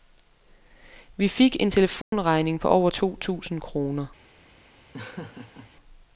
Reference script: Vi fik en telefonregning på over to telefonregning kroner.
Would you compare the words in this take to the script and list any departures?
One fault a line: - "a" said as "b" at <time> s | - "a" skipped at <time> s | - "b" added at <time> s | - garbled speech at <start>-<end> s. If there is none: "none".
- "telefonregning" said as "tusind" at 3.2 s